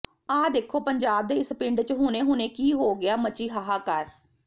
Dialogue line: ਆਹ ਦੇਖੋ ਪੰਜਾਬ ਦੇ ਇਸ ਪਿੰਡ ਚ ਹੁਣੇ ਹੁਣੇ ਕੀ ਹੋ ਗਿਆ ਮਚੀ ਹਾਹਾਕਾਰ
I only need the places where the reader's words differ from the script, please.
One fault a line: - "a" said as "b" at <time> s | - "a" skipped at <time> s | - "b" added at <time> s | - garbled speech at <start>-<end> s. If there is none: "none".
none